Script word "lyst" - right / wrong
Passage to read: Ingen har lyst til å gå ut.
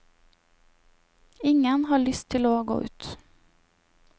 right